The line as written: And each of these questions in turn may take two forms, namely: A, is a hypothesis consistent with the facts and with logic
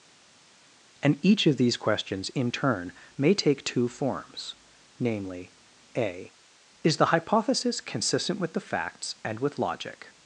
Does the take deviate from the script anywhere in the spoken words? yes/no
yes